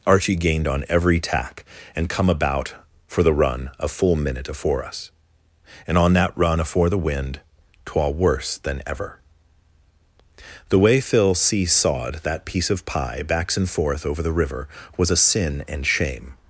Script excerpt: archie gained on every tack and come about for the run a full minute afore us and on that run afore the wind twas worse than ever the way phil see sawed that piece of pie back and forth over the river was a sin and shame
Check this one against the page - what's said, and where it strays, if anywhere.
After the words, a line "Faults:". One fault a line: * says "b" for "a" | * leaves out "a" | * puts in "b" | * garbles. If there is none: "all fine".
archie gained on every tack and come about for the run a full minute afore us and on that run afore the wind twa worse than ever the way phil see sawed that piece of pie backs and forth over the river was a sin and shame
Faults:
* says "twa" for "twas"
* says "backs" for "back"